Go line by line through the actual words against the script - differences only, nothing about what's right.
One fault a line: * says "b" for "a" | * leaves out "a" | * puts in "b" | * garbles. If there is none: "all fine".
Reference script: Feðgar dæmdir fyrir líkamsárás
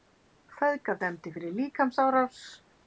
all fine